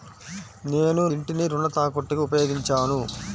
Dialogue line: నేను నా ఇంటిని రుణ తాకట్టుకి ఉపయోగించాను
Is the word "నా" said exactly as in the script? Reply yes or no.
no